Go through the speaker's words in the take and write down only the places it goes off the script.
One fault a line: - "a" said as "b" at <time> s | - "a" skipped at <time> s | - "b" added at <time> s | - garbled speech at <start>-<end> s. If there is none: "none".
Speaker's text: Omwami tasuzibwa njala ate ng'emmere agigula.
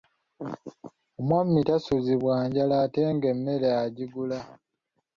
none